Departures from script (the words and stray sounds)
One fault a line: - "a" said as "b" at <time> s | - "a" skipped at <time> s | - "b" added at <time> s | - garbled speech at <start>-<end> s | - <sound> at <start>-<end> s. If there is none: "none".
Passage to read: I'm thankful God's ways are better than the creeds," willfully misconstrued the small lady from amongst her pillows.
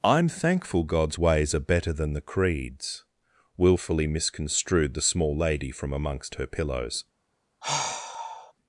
- sigh at 7.6-8.5 s